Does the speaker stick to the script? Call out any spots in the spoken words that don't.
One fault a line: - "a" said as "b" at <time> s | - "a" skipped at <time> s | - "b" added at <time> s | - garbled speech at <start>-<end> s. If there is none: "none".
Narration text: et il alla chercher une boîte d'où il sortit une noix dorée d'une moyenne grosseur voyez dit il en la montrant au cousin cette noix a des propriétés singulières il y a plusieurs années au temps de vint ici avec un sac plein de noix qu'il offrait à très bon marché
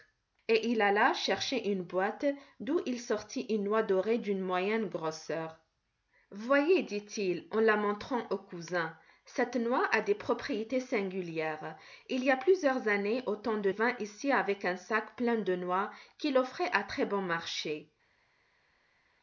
none